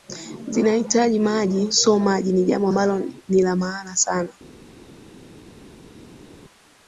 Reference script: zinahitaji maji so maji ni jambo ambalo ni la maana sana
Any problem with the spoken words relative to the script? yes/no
no